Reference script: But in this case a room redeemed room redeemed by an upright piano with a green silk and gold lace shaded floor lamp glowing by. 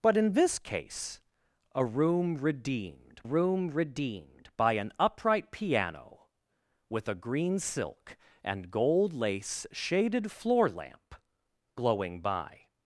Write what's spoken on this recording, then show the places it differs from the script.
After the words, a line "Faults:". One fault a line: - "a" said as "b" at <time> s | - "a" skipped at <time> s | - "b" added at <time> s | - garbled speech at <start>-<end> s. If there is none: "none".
But in this case a room redeemed room redeemed by an upright piano with a green silk and gold lace shaded floor lamp glowing by.
Faults:
none